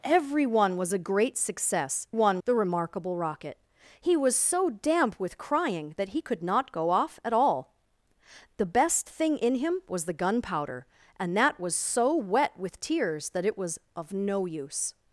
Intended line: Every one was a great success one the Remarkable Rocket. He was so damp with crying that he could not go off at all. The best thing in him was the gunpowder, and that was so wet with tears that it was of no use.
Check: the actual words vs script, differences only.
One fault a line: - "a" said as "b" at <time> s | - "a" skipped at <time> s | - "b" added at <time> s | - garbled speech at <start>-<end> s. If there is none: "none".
none